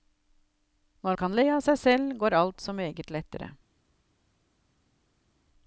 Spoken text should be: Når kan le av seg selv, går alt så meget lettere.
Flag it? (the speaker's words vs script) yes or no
no